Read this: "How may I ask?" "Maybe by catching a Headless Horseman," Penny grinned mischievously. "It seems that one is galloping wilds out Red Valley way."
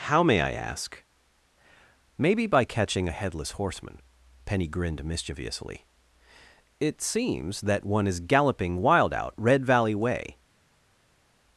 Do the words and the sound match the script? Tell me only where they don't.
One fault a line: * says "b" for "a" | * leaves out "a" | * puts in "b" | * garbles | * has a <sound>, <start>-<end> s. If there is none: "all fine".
* says "wild" for "wilds"